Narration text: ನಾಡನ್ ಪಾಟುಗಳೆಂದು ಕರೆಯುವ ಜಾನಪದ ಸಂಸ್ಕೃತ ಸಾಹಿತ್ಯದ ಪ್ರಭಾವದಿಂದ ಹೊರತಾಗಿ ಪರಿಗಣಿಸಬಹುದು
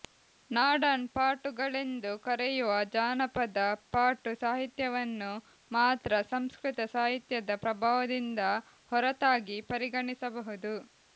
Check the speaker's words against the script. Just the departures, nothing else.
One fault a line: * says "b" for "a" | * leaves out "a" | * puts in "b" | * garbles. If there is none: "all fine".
* puts in "ಪಾಟು ಸಾಹಿತ್ಯವನ್ನು ಮಾತ್ರ"